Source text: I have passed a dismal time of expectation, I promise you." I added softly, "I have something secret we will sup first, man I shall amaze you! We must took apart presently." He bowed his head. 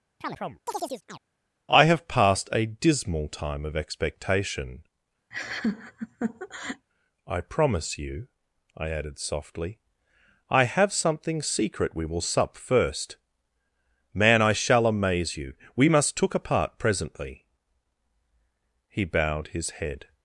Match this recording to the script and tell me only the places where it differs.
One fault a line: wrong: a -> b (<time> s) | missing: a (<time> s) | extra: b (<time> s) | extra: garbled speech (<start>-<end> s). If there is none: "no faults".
no faults